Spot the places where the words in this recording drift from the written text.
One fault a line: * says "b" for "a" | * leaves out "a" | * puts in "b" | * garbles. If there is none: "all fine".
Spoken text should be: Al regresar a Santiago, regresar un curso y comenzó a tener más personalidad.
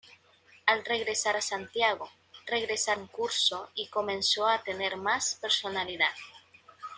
all fine